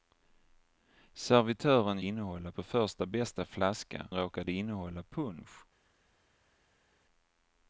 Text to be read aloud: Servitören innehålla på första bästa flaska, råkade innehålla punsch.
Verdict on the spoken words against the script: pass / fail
pass